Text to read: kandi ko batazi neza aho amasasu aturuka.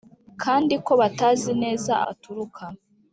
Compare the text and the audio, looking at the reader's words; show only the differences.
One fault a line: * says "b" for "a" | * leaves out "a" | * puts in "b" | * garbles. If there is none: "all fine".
* leaves out "aho amasasu"